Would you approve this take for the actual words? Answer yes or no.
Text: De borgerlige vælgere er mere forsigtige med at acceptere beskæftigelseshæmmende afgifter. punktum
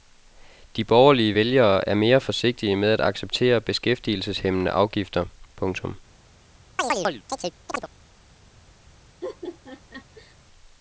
yes